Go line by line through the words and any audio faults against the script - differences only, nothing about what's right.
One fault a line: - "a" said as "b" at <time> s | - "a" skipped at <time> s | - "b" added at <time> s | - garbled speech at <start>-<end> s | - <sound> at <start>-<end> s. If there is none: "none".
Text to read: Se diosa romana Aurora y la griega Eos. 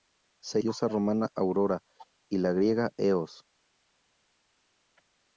none